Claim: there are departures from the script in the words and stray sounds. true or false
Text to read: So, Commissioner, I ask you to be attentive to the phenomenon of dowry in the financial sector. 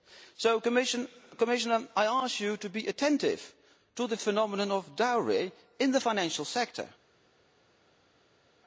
false